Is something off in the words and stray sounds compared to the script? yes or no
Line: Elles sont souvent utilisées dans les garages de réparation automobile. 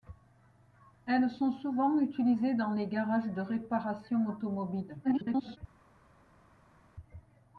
yes